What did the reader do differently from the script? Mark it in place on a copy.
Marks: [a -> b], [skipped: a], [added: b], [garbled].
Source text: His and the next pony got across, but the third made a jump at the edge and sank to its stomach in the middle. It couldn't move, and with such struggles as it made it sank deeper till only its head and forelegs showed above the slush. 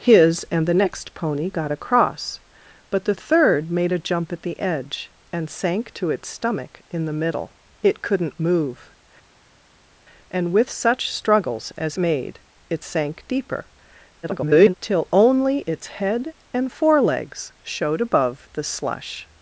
His and the next pony got across, but the third made a jump at the edge and sank to its stomach in the middle. It couldn't move, and with such struggles as [skipped: it] made it sank deeper [garbled] till only its head and forelegs showed above the slush.